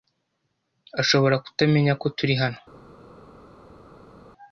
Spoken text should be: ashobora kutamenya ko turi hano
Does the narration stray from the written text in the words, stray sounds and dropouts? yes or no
no